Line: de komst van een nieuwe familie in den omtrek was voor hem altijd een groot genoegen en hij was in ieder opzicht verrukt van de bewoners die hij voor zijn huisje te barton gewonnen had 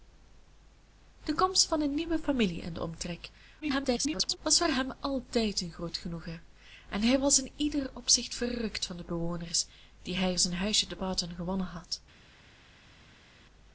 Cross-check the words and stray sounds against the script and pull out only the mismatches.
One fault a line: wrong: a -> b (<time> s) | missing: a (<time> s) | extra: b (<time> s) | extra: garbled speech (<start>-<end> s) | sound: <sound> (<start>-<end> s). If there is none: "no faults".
extra: garbled speech (3.6-4.4 s)
missing: voor (10.4 s)